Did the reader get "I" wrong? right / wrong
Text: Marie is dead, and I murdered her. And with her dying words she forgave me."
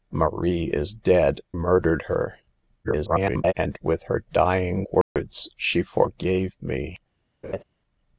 wrong